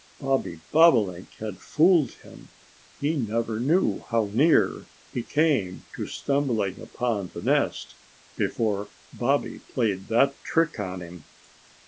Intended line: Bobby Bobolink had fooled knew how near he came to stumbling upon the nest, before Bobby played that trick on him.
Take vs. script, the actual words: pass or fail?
fail